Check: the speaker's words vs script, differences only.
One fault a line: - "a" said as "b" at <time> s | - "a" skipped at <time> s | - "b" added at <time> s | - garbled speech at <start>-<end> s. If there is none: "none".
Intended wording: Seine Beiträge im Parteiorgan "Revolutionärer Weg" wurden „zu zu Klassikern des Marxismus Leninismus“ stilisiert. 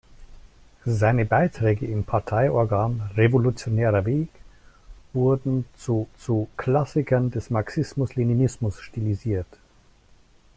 none